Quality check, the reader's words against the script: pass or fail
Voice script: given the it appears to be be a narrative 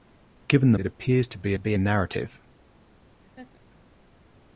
pass